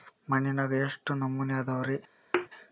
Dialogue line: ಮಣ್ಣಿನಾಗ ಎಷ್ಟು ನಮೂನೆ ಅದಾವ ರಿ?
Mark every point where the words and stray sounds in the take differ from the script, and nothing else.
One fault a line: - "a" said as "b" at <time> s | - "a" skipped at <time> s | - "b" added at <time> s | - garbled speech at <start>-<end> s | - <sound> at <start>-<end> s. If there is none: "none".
- thud at 2.3-2.5 s